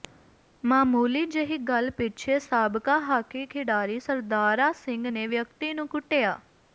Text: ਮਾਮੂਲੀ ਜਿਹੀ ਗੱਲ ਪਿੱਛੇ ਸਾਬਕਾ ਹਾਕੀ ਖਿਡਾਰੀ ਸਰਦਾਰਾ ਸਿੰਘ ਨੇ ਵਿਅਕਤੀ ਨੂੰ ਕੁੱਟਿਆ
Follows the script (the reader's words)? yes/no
yes